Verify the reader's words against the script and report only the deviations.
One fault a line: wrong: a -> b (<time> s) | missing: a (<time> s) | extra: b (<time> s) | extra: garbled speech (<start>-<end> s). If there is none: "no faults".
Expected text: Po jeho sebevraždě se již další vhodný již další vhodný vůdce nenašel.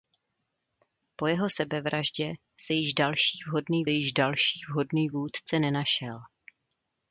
no faults